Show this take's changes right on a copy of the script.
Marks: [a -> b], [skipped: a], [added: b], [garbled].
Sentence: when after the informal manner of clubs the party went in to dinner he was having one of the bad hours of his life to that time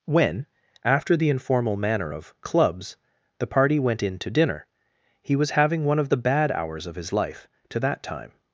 when after the informal manner of clubs the party went in to dinner he was having one of the bad hours of his life to that time